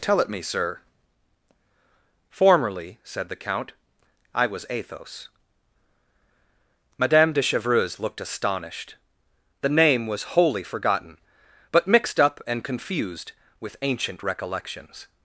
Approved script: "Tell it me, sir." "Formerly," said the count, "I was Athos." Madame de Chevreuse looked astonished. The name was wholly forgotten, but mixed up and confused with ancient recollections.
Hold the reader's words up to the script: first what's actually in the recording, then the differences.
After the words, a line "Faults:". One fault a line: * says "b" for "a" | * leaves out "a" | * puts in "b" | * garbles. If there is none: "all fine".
"Tell it me, sir." "Formerly," said the count, "I was Athos." Madame de Chevreuse looked astonished. The name was wholly forgotten, but mixed up and confused with ancient recollections.
Faults:
all fine